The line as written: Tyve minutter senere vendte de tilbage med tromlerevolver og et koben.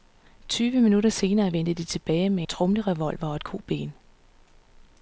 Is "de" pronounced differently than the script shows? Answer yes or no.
no